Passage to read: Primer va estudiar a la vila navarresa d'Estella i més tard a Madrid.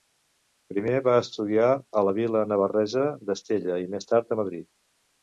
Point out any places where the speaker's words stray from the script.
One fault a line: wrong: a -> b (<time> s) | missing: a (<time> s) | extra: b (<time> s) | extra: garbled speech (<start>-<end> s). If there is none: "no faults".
no faults